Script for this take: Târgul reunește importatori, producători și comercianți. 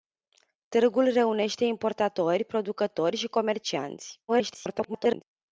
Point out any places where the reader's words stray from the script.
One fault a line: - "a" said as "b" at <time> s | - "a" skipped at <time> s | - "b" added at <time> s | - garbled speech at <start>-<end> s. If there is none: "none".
- garbled speech at 4.3-5.2 s